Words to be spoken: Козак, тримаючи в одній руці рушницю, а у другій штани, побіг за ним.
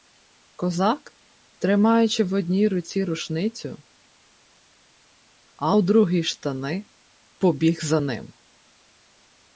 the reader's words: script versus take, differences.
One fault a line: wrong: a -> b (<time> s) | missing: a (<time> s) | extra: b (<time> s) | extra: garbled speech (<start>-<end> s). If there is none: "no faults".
no faults